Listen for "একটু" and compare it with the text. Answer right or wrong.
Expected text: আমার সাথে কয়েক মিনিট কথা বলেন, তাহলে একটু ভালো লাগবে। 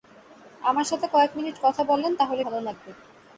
wrong